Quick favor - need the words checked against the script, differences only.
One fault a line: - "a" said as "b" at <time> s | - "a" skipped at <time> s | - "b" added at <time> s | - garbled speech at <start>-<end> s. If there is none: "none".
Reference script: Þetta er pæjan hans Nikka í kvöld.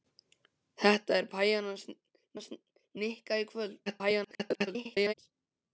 - "hans" added at 2.4 s
- garbled speech at 3.9-5.1 s